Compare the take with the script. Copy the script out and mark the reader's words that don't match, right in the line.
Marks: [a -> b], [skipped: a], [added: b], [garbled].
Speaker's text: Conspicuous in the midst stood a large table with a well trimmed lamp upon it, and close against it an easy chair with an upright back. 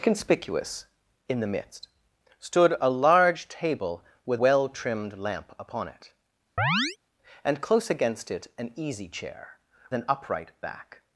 Conspicuous in the midst stood a large table with [skipped: a] well trimmed lamp upon it, and close against it an easy chair [skipped: with] an upright back.